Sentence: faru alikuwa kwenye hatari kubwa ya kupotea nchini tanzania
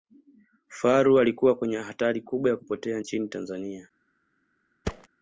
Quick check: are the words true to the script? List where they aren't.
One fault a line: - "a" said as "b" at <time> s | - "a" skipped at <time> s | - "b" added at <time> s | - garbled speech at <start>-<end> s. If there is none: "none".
none